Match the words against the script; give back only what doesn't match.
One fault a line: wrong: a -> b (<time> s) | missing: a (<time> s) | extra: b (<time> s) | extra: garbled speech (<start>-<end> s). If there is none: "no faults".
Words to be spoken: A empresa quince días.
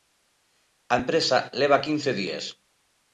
extra: leva (1.6 s)